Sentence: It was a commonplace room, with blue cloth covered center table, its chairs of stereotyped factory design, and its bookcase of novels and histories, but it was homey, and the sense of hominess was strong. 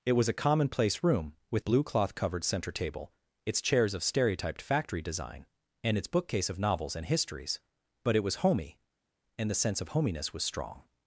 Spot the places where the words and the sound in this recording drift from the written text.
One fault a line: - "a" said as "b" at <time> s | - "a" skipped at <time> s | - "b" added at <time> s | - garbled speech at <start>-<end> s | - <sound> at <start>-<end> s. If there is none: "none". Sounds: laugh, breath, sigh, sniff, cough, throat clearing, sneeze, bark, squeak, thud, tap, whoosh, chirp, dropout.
none